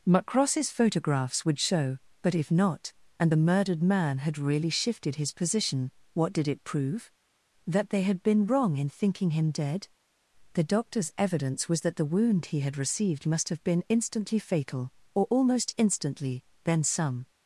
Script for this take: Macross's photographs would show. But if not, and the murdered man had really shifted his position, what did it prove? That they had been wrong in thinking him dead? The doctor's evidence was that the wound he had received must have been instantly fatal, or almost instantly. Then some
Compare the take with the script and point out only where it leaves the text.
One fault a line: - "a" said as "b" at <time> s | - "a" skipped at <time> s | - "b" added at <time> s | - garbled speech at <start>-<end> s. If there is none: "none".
none